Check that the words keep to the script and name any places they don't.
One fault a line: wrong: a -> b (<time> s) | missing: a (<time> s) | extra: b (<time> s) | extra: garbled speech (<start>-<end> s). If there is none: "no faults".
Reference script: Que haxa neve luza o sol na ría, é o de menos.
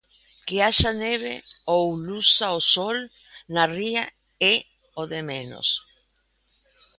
extra: ou (1.7 s)